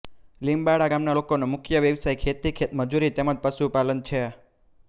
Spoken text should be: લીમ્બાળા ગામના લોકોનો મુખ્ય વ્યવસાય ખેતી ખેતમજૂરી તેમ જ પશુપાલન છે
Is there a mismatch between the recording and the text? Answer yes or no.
no